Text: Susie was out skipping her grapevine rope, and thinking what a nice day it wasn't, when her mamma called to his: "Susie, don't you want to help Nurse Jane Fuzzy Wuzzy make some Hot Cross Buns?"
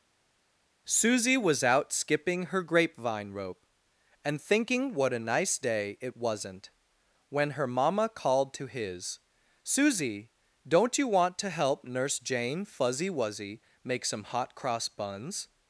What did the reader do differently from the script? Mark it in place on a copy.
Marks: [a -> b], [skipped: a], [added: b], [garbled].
Susie was out skipping her grapevine rope, and thinking what a nice day it wasn't, when her mamma called to his: "Susie, don't you want to help Nurse Jane Fuzzy Wuzzy make some Hot Cross Buns?"